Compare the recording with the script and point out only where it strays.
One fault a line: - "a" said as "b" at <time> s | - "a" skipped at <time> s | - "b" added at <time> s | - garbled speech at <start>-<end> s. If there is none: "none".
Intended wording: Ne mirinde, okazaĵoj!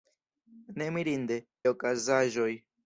none